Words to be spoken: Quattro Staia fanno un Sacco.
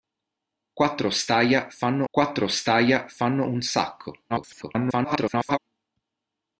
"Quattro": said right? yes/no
yes